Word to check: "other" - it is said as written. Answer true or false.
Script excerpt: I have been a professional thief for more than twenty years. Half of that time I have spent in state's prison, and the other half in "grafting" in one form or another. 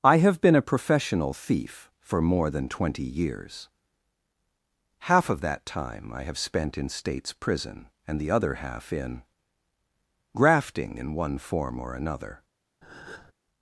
true